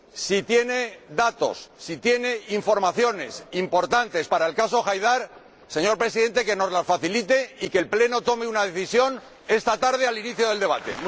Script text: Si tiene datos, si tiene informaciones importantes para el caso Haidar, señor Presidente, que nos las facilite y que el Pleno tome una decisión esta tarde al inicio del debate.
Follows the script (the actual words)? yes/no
yes